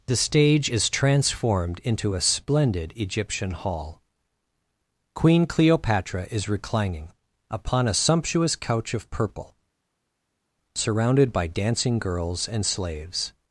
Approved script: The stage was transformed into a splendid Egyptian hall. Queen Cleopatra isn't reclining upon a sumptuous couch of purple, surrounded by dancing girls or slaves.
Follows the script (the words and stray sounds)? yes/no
no